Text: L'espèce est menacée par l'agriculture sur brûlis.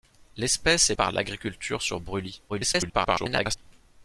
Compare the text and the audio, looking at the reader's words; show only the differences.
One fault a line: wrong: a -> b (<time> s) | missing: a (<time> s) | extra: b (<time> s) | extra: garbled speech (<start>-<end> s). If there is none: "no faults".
missing: menacée (0.9 s)
extra: garbled speech (2.5-3.6 s)